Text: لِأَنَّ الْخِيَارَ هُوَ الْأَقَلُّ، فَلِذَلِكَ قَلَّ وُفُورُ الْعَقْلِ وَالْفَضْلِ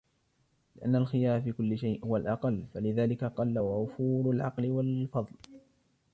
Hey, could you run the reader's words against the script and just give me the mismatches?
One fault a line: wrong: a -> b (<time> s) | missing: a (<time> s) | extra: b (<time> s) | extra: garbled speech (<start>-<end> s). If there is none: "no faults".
extra: فِي كُلِّ شَيْءٍ (1.4 s)